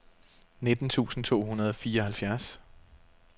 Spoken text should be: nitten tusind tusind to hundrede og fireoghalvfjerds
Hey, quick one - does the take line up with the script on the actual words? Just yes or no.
no